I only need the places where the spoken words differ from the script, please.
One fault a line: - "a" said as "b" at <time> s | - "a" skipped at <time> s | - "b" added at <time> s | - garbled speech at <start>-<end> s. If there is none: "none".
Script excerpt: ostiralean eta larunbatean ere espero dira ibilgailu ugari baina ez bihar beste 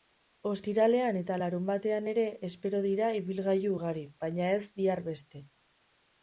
none